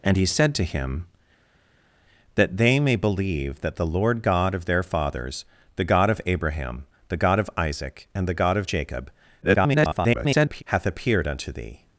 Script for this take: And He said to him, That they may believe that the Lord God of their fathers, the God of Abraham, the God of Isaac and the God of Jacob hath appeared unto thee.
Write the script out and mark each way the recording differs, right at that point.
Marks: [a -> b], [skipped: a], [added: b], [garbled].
And He said to him, That they may believe that the Lord God of their fathers, the God of Abraham, the God of Isaac and the God of Jacob [garbled] hath appeared unto thee.